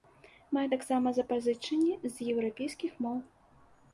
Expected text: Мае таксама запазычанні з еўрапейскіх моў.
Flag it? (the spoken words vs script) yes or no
no